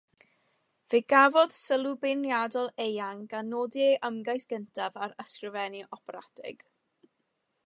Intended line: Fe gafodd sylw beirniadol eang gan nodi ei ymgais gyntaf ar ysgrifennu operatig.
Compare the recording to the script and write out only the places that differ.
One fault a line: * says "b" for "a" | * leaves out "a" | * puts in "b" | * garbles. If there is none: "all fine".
all fine